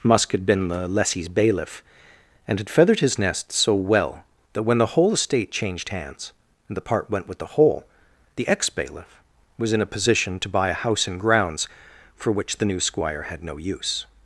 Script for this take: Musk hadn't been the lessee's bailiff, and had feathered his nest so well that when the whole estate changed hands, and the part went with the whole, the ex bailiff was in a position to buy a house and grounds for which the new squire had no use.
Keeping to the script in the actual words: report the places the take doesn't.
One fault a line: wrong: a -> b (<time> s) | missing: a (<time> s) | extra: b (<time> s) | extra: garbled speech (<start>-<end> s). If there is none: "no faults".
wrong: hadn't -> had (0.3 s)